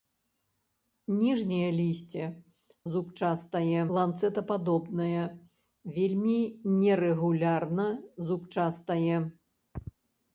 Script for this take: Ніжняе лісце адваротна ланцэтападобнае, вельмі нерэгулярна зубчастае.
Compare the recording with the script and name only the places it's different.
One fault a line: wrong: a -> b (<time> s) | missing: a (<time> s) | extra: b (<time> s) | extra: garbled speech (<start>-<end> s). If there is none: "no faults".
wrong: адваротна -> зубчастае (2.9 s)